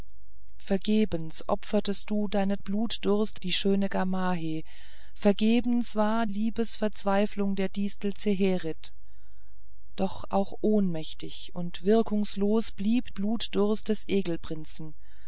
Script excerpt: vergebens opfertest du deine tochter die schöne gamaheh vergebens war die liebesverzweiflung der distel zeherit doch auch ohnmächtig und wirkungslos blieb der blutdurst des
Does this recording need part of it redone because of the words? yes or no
yes